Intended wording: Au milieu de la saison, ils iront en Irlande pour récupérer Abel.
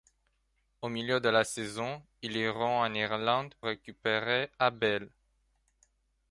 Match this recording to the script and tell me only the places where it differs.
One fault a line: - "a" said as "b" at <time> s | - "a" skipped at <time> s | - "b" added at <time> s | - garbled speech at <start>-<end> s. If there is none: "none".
- "pour" skipped at 3.5 s